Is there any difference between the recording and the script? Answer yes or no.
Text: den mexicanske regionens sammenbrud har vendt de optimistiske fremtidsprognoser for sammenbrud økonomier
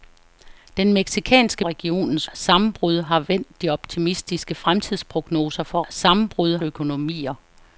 no